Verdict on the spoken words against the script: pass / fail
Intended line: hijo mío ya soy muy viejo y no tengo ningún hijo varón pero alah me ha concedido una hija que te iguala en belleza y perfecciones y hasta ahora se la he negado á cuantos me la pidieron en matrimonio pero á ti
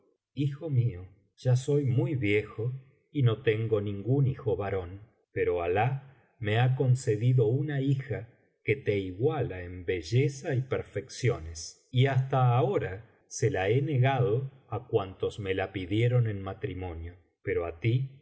pass